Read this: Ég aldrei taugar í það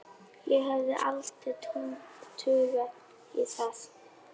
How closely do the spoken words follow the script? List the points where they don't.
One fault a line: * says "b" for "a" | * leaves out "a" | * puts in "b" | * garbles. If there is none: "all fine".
* puts in "hefði"